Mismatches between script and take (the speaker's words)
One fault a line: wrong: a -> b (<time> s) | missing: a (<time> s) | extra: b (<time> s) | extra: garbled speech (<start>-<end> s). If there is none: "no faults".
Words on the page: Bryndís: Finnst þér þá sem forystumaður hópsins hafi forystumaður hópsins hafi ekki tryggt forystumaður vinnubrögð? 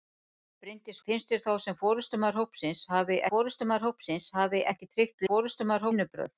no faults